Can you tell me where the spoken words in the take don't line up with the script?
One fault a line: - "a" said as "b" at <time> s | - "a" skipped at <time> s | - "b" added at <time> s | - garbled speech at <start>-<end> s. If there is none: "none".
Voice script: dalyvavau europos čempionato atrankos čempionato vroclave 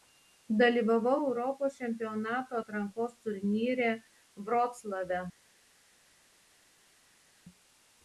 - "čempionato" said as "turnyre" at 3.2 s